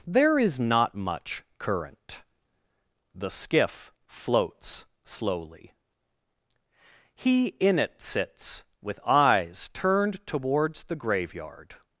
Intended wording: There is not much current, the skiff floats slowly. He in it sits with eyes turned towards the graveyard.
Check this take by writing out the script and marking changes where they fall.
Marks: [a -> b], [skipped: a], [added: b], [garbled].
There is not much current, the skiff floats slowly. He in it sits with eyes turned towards the graveyard.